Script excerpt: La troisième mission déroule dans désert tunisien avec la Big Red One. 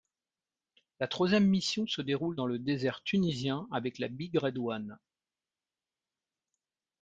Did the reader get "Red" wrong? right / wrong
right